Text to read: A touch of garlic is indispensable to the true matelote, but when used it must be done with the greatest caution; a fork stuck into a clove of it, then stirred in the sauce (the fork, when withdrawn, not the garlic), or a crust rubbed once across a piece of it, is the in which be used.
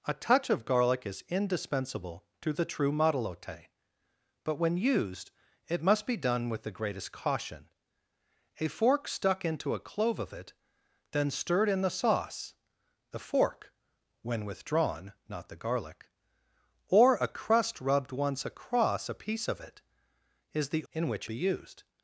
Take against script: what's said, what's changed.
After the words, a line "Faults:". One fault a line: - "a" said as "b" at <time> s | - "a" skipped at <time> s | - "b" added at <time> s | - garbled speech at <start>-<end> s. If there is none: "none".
A touch of garlic is indispensable to the true matelote, but when used it must be done with the greatest caution; a fork stuck into a clove of it, then stirred in the sauce (the fork, when withdrawn, not the garlic), or a crust rubbed once across a piece of it, is the in which be used.
Faults:
none